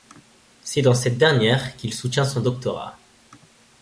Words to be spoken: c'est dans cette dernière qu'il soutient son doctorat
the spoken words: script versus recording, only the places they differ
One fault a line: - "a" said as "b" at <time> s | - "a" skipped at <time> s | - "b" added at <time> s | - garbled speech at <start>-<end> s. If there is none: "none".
none